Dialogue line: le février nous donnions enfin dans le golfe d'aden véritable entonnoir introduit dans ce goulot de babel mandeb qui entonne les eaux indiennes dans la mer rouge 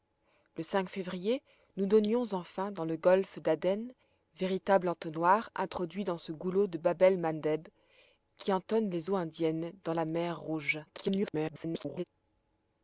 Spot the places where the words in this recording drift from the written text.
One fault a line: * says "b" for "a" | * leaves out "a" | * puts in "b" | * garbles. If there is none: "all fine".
* garbles